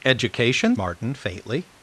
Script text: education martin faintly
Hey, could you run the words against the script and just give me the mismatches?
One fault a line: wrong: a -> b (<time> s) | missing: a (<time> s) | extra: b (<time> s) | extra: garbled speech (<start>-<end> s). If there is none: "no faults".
no faults